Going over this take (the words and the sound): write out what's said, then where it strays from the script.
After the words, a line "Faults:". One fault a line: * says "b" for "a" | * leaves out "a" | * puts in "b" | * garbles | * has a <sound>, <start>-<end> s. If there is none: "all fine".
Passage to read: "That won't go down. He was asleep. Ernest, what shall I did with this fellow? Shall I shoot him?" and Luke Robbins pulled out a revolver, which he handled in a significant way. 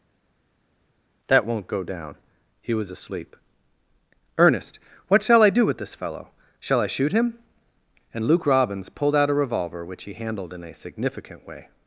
"That won't go down. He was asleep. Ernest, what shall I do with this fellow? Shall I shoot him?" and Luke Robbins pulled out a revolver, which he handled in a significant way.
Faults:
* says "do" for "did"